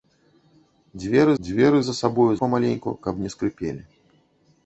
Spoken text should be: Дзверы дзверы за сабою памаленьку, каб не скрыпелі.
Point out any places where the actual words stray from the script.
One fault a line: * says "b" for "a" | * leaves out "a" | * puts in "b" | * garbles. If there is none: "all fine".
all fine